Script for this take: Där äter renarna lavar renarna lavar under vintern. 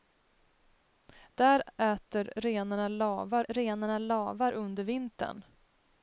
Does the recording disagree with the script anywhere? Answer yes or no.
no